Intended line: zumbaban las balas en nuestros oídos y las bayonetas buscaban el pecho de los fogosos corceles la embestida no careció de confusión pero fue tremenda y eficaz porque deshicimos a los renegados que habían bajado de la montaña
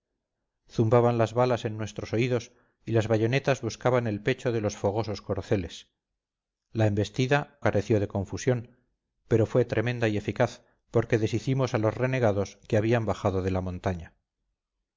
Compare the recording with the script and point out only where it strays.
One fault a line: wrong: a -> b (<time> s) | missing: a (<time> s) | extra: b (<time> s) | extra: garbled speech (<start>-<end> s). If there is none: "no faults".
missing: no (7.6 s)